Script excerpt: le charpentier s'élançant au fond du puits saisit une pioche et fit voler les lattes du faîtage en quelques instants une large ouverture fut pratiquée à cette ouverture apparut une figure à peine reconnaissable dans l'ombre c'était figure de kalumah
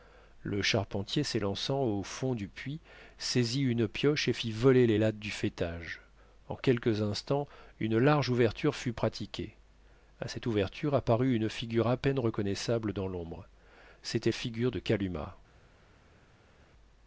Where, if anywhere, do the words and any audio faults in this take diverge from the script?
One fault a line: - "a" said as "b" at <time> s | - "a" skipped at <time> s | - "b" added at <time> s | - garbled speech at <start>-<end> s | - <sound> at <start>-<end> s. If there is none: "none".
none